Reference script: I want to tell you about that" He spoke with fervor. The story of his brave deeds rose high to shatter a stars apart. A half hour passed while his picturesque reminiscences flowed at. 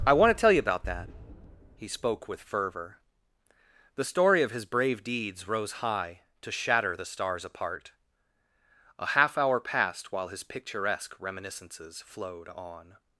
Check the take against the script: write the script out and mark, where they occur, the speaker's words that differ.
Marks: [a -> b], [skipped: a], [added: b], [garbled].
I want to tell you about that" He spoke with fervor. The story of his brave deeds rose high to shatter [a -> the] stars apart. A half hour passed while his picturesque reminiscences flowed [at. -> on]